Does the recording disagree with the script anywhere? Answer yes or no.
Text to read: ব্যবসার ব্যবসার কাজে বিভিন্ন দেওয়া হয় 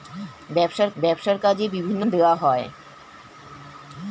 no